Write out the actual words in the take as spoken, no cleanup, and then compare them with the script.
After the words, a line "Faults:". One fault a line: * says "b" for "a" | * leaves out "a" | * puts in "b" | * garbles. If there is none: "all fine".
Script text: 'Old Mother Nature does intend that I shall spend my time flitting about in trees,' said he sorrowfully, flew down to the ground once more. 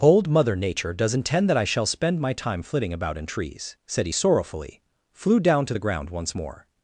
'Old Mother Nature does intend that I shall spend my time flitting about in trees,' said he sorrowfully, flew down to the ground once more.
Faults:
all fine